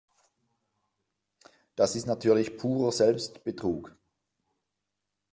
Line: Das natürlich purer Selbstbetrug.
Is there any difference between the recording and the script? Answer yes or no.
yes